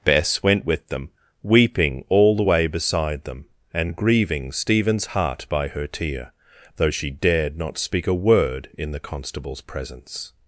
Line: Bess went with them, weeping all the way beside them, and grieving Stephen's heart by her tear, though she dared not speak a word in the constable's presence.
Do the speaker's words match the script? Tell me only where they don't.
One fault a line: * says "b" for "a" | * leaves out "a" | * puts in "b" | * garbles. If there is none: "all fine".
all fine